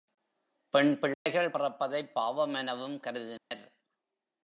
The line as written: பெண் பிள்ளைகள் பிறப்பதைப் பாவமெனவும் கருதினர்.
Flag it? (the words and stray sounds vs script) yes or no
yes